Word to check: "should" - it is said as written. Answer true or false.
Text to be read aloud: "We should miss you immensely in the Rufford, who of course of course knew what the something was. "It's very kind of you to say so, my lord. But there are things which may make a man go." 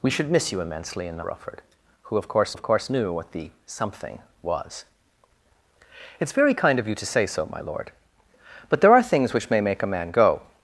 true